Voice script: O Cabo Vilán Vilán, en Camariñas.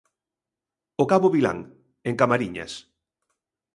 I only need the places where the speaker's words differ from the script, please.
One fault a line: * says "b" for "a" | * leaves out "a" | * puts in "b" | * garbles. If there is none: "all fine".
* leaves out "Vilán"